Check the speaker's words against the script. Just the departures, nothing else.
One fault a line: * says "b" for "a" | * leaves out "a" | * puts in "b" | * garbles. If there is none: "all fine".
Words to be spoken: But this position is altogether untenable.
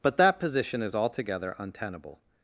* says "that" for "this"